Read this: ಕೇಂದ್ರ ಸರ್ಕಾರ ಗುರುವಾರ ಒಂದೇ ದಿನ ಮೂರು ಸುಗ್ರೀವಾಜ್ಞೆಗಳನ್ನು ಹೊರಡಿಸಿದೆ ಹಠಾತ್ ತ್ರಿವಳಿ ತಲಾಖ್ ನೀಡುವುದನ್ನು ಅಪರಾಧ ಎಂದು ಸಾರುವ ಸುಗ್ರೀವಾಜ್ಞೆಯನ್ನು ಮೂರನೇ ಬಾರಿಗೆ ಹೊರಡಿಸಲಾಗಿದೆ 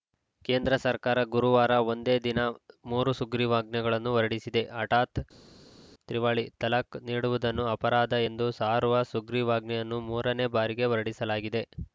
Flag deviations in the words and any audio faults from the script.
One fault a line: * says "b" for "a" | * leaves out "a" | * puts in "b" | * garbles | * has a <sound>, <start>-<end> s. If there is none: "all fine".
all fine